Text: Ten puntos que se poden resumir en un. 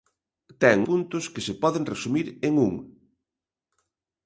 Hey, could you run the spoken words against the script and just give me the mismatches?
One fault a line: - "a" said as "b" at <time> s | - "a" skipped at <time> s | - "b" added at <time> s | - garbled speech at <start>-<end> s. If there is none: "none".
none